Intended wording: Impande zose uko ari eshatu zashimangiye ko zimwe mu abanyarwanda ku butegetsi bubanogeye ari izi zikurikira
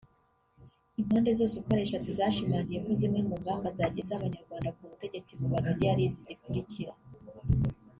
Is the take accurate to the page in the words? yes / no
no